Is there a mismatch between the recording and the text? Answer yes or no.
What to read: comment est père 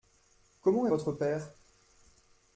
yes